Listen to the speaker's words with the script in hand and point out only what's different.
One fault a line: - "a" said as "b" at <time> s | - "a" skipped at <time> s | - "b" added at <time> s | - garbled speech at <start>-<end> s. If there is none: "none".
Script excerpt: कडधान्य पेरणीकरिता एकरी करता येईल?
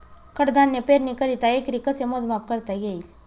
- "कसे मोजमाप" added at 1.8 s